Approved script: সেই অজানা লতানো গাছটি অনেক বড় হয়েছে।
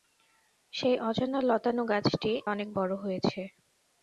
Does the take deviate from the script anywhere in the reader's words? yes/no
no